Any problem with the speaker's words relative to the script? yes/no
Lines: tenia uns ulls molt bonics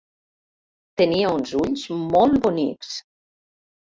no